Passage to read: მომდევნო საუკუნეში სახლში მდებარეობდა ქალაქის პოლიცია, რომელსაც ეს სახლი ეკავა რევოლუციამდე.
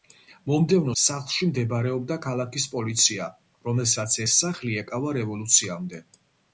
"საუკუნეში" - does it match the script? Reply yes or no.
no